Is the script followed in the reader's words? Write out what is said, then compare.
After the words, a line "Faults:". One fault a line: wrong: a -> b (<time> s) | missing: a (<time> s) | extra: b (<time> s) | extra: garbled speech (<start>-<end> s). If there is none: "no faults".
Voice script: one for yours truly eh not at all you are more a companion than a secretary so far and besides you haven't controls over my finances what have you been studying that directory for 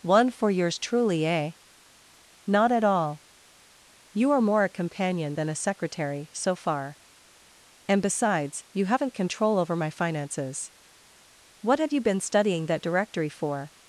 one for yours truly eh not at all you are more a companion than a secretary so far and besides you haven't control over my finances what have you been studying that directory for
Faults:
wrong: controls -> control (9.1 s)